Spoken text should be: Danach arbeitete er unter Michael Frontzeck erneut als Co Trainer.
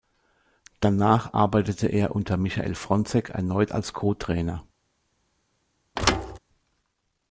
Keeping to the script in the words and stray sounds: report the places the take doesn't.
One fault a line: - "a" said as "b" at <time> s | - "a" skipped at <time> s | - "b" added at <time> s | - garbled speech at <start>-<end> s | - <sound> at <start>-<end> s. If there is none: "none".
- thud at 6.0-6.4 s